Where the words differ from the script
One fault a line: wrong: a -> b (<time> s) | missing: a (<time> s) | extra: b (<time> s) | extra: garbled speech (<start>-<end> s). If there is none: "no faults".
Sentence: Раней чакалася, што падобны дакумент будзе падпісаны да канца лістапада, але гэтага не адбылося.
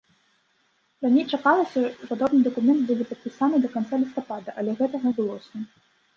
missing: што (1.8 s)
missing: не (5.1 s)